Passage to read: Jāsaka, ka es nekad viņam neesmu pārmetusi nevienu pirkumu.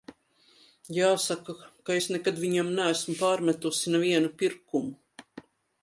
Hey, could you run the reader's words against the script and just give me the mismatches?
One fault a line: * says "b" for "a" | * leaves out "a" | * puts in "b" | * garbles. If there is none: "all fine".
all fine